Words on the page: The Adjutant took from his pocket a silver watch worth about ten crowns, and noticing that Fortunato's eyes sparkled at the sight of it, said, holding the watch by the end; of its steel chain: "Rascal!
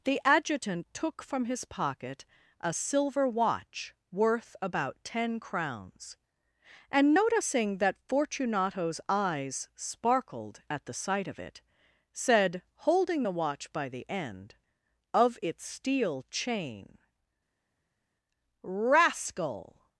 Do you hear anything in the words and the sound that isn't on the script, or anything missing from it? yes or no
no